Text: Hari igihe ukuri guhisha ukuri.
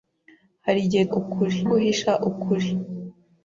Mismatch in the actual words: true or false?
false